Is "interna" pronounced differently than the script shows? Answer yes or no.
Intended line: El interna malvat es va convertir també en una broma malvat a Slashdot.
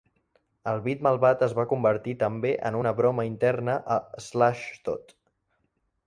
yes